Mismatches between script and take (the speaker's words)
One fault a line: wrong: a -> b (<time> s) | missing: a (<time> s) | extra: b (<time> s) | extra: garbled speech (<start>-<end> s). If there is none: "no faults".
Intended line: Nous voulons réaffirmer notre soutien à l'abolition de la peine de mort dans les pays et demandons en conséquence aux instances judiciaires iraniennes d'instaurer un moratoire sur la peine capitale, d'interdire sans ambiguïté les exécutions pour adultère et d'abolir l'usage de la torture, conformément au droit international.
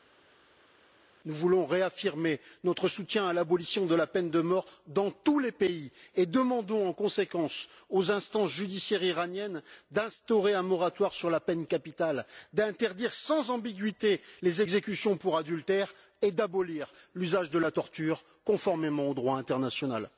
extra: tous (5.1 s)